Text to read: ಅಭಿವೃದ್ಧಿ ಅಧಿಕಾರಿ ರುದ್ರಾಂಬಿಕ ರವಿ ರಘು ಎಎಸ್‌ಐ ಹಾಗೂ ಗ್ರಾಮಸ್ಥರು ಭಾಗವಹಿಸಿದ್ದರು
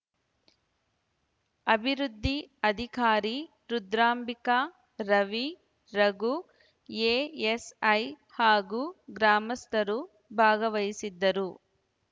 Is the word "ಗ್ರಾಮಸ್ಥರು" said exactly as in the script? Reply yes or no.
yes